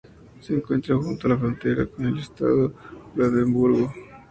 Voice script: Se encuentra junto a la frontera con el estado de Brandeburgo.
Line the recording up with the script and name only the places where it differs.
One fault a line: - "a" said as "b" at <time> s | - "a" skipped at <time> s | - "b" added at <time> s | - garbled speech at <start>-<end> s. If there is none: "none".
none